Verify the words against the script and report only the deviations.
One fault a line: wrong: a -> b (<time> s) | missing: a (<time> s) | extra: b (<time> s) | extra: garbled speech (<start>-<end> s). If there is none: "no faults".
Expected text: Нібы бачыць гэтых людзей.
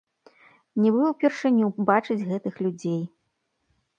extra: ўпершыню (1.1 s)